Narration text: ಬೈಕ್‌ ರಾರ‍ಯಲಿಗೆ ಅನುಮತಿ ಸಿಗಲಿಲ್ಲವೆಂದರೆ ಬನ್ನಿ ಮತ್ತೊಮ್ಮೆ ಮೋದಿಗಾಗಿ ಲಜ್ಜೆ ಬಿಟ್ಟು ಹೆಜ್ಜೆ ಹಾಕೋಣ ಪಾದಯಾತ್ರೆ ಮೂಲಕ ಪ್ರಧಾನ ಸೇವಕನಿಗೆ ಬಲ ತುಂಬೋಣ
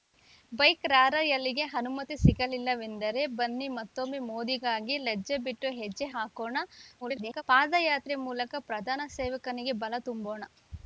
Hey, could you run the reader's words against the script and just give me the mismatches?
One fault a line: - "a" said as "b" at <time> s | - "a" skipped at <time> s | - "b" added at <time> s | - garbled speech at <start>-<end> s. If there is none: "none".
- garbled speech at 7.0-7.4 s